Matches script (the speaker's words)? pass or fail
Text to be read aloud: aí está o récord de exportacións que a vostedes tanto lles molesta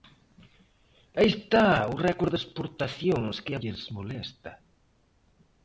fail